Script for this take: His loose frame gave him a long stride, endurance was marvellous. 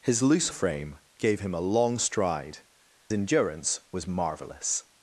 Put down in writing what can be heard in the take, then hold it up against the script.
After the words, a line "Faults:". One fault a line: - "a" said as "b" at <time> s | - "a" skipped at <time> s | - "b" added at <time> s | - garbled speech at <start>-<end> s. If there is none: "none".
His loose frame gave him a long stride, endurance was marvellous.
Faults:
none